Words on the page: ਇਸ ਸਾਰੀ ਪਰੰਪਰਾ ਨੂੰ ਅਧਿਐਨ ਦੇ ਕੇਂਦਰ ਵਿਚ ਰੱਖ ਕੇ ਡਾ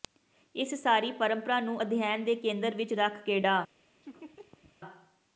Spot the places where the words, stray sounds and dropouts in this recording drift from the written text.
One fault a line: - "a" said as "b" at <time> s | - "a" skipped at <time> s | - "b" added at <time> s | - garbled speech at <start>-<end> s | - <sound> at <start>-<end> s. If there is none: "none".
- laugh at 4.0-4.8 s